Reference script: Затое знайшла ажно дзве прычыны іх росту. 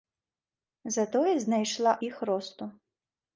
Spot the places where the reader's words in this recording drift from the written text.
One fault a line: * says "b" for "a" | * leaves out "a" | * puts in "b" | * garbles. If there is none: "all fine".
* leaves out "ажно дзве прычыны"